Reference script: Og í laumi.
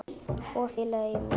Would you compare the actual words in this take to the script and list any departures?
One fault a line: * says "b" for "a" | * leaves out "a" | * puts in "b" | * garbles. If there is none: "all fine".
all fine